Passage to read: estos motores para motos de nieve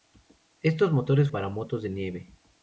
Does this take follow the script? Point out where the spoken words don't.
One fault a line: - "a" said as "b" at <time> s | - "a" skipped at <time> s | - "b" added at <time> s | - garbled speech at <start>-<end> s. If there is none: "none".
none